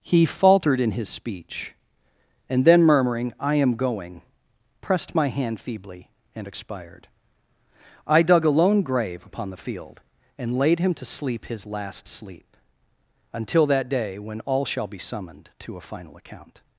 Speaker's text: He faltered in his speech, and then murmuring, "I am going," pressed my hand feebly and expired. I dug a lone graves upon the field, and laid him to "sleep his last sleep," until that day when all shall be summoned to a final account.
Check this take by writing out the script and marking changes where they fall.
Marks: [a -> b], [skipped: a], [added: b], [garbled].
He faltered in his speech, and then murmuring, "I am going," pressed my hand feebly and expired. I dug a lone [graves -> grave] upon the field, and laid him to "sleep his last sleep," until that day when all shall be summoned to a final account.